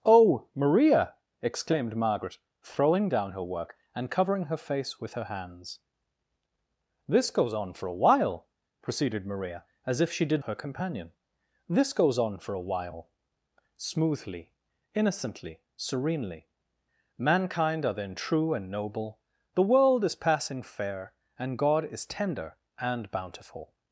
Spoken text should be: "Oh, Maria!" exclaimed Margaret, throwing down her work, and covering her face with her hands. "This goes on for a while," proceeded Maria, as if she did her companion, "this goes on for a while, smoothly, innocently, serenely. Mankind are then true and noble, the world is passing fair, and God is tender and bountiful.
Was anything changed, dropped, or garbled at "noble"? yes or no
no